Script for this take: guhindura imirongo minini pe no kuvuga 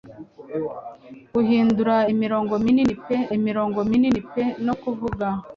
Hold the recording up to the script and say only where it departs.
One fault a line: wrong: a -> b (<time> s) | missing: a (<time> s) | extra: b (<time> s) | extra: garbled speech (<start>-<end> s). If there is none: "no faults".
extra: imirongo minini pe (3.4 s)